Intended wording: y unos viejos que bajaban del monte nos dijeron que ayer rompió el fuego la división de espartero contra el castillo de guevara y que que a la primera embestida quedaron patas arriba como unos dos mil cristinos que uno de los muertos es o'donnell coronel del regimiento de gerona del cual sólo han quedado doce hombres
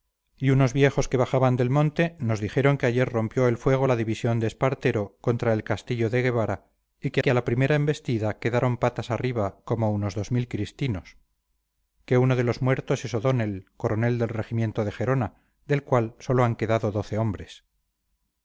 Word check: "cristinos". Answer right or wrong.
right